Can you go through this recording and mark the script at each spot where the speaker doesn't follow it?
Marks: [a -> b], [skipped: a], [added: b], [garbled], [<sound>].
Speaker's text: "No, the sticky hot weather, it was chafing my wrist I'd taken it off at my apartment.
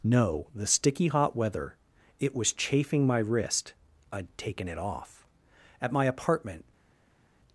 "No, the sticky hot weather, it was chafing my wrist I'd taken it off at my apartment.